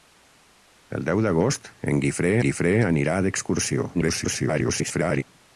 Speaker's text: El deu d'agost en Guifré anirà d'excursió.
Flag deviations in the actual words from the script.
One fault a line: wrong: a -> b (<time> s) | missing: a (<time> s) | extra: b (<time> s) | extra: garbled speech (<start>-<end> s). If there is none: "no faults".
extra: Guifré (2.5 s)
extra: garbled speech (3.9-5.2 s)